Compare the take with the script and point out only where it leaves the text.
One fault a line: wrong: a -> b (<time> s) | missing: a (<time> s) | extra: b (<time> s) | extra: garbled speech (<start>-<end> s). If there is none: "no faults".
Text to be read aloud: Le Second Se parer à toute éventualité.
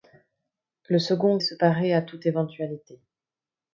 no faults